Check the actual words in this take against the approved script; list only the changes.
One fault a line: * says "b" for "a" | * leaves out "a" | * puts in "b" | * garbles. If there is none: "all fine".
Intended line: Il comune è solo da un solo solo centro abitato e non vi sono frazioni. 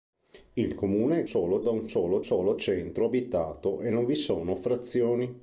all fine